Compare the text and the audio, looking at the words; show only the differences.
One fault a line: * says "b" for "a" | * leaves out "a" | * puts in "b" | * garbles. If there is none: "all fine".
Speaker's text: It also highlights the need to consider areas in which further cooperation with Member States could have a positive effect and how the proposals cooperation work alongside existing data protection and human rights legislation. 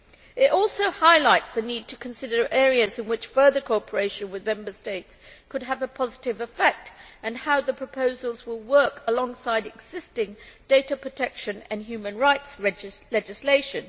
* says "will" for "cooperation"